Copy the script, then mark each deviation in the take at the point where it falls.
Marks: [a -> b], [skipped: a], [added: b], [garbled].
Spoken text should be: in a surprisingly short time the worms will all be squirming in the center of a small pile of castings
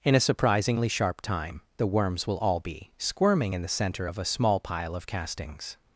in a surprisingly [short -> sharp] time the worms will all be squirming in the center of a small pile of castings